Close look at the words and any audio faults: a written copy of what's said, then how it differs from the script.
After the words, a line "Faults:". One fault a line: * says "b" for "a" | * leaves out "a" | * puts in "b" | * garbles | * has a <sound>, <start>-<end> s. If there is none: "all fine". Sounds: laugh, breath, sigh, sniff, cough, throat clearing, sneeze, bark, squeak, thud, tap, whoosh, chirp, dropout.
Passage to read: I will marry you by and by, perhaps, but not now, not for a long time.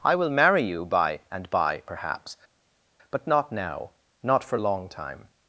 I will marry you by and by, perhaps, but not now, not for long time.
Faults:
* leaves out "a"